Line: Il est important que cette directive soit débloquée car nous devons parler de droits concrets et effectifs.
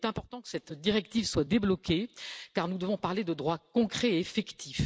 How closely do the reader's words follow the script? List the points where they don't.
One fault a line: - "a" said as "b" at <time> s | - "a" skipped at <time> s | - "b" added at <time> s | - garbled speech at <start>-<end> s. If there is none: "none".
none